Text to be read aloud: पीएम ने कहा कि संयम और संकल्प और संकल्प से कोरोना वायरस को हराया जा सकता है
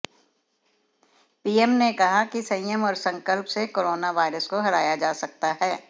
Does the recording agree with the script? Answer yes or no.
no